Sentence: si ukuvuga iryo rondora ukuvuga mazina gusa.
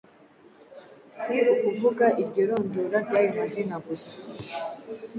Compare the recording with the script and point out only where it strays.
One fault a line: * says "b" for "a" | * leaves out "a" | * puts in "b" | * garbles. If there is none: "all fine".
* says "ry'ayo" for "ukuvuga"